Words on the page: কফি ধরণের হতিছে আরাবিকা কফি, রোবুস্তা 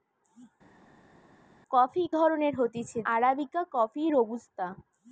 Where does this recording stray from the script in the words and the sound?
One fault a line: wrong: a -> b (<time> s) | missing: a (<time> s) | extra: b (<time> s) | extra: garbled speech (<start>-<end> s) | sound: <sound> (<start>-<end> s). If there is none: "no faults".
no faults